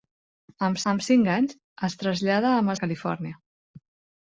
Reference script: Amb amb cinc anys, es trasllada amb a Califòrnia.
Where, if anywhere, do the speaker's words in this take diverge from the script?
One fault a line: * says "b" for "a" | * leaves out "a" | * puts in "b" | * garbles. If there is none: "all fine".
all fine